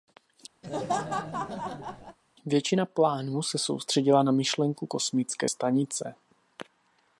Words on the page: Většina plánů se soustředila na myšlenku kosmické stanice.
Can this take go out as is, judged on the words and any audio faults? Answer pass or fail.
fail